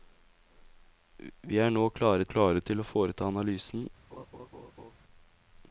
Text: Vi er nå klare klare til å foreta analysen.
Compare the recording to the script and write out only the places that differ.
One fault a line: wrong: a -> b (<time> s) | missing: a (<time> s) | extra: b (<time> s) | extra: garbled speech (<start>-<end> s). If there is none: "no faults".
no faults